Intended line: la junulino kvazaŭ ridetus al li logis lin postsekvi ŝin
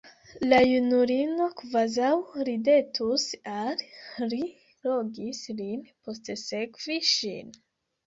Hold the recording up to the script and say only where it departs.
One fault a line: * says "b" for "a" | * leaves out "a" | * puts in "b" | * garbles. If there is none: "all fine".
all fine